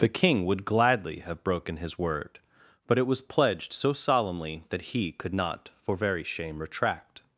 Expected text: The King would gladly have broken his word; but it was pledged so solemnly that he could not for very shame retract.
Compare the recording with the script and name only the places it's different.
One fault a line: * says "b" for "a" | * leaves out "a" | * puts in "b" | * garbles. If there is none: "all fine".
all fine